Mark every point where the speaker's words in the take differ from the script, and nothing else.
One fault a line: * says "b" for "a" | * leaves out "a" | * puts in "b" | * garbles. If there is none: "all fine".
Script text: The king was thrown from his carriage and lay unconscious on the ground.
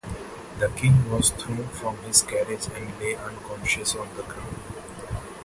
all fine